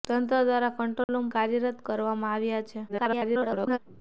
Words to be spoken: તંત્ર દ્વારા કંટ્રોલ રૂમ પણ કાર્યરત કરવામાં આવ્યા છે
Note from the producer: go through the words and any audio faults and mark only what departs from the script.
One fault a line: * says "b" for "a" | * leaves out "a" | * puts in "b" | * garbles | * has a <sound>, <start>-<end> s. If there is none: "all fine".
* has a dropout, 1.0-1.1 s
* leaves out "પણ"
* garbles